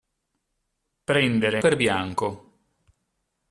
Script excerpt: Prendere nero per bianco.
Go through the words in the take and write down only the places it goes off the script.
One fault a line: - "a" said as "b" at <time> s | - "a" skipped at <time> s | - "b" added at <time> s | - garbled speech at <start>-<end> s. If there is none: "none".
- "nero" skipped at 1.6 s